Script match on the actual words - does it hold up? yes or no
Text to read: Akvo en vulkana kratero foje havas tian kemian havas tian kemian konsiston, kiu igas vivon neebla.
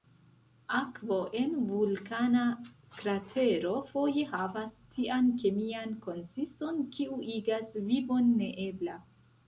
no